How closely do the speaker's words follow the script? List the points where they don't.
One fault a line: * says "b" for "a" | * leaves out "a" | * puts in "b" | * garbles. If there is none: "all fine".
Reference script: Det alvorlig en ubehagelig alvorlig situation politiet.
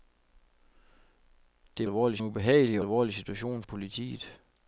all fine